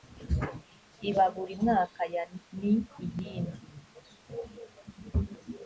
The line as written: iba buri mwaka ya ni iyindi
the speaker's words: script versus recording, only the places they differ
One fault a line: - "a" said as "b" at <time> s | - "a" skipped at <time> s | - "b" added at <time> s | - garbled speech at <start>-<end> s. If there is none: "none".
none